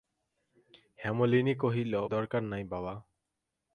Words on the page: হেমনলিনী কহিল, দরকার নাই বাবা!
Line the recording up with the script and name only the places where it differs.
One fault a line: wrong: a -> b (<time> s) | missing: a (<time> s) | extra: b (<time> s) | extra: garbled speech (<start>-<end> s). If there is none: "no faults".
no faults